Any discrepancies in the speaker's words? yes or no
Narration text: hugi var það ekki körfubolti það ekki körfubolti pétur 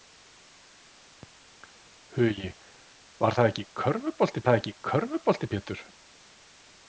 no